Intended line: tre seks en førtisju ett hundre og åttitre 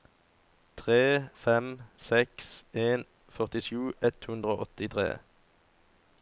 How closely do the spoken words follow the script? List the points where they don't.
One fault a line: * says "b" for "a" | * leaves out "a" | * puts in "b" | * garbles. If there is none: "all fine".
* puts in "fem"